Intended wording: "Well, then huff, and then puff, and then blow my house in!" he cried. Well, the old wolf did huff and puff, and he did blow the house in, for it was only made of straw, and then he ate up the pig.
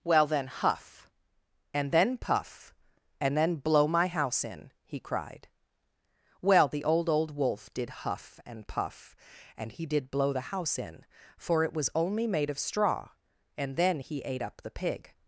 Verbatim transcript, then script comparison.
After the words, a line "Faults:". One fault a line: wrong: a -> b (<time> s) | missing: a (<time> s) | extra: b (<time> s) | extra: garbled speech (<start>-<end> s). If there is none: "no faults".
"Well, then huff, and then puff, and then blow my house in!" he cried. Well, the old old wolf did huff and puff, and he did blow the house in, for it was only made of straw, and then he ate up the pig.
Faults:
extra: old (7.1 s)